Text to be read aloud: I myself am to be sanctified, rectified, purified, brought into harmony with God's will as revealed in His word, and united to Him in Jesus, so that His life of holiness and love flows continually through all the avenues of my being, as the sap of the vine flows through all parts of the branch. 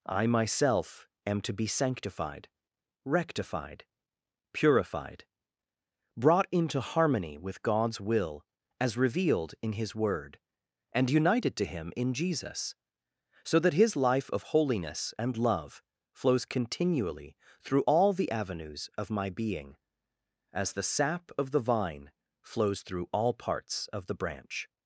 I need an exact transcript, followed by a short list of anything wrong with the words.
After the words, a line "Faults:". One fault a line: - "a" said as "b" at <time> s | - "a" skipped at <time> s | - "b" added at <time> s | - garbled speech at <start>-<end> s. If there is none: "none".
I myself am to be sanctified, rectified, purified, brought into harmony with God's will as revealed in His word, and united to Him in Jesus, so that His life of holiness and love flows continually through all the avenues of my being, as the sap of the vine flows through all parts of the branch.
Faults:
none